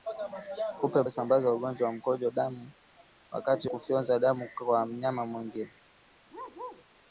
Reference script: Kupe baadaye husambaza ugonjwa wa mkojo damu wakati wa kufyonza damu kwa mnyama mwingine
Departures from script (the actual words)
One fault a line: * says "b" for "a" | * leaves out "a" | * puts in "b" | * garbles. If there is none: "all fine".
* leaves out "baadaye"
* leaves out "wa"